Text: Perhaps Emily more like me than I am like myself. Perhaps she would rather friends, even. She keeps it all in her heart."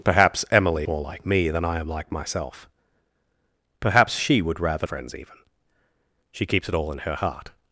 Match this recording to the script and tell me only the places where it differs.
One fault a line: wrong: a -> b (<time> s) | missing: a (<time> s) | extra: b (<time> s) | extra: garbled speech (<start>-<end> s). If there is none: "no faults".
no faults